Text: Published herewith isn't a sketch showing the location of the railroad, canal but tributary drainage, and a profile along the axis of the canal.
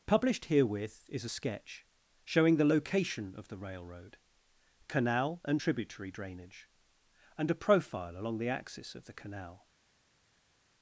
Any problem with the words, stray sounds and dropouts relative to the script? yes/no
yes